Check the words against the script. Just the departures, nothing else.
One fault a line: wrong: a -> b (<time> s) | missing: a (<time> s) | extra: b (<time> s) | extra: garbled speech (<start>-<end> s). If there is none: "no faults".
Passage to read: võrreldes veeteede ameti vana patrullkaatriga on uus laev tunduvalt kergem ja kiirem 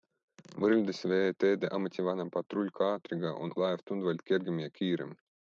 missing: uus (3.5 s)